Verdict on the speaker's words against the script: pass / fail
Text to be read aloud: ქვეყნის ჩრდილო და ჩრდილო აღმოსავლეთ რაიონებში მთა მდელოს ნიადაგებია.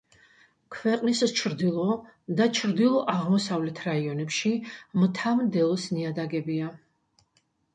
pass